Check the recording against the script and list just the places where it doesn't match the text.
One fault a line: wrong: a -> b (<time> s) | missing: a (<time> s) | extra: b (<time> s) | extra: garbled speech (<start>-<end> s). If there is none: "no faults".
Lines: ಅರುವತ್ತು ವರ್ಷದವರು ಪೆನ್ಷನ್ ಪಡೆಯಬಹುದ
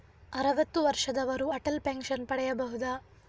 extra: ಅಟಲ್ (1.5 s)